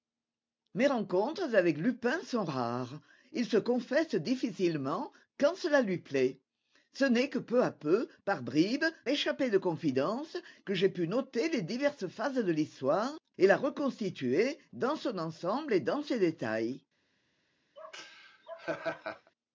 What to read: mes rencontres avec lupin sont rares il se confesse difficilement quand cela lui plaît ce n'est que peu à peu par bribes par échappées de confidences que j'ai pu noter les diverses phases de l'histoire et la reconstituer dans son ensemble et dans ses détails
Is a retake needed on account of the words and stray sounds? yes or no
yes